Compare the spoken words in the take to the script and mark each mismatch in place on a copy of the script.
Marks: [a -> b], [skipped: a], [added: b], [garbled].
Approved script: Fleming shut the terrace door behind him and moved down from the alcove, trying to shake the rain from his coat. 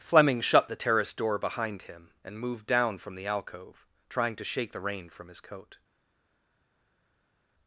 Fleming shut the terrace door behind him and moved down from the alcove, trying to shake the rain from his coat.